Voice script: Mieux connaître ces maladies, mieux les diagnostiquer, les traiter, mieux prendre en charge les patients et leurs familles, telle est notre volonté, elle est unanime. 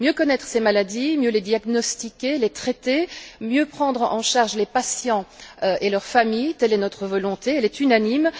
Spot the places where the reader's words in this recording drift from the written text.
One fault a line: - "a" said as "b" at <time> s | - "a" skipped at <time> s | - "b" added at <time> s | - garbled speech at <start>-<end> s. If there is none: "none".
none